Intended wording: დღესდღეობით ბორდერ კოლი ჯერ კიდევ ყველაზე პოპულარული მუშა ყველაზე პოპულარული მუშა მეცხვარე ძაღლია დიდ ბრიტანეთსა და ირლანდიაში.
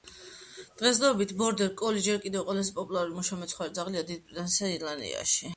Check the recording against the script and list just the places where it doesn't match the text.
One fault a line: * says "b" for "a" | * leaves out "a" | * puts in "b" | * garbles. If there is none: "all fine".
* leaves out "ყველაზე პოპულარული მუშა"